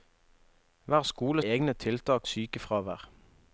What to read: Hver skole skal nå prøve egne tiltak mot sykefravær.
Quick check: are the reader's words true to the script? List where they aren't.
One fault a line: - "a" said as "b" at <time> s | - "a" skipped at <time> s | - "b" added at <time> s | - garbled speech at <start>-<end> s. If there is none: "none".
- "skal nå prøve" skipped at 1.4 s
- "mot" skipped at 2.3 s